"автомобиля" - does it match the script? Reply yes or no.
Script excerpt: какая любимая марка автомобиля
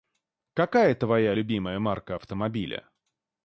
yes